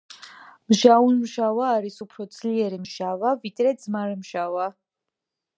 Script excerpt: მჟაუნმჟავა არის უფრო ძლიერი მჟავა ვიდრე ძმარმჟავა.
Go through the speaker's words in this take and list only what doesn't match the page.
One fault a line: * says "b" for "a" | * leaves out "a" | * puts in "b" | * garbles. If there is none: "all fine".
all fine